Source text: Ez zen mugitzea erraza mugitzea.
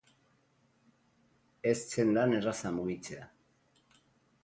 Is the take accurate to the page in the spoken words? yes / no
no